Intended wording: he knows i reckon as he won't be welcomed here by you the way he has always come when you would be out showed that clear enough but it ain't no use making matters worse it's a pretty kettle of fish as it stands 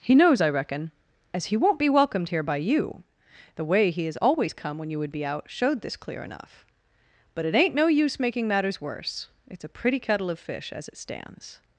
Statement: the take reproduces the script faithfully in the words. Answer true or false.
false